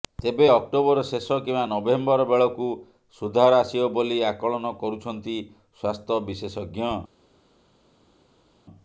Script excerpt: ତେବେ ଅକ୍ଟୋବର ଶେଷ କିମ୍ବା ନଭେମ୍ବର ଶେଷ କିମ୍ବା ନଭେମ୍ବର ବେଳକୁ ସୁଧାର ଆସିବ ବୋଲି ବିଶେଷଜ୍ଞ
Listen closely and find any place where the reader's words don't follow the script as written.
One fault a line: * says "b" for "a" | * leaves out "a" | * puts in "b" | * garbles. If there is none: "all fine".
* leaves out "ଶେଷ କିମ୍ବା ନଭେମ୍ବର"
* puts in "ଆକଳନ କରୁଛନ୍ତି ସ୍ୱାସ୍ଥ୍ୟ"